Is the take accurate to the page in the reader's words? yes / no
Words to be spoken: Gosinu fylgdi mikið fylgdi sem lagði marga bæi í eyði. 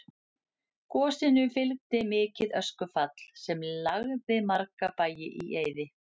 no